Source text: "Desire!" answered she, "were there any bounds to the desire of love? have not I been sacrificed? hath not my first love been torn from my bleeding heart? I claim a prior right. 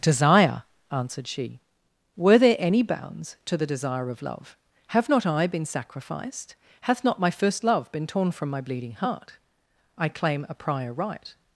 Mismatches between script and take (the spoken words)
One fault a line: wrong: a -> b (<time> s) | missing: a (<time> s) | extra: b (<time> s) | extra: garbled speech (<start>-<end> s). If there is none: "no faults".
no faults